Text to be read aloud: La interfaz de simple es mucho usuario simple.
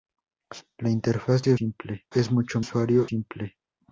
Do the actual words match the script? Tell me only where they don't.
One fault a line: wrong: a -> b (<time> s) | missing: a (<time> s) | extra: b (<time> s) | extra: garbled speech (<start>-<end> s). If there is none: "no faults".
no faults